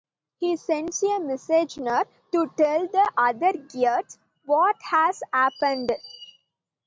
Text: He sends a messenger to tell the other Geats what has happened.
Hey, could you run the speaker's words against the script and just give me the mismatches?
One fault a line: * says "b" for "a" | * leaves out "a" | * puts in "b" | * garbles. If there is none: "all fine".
all fine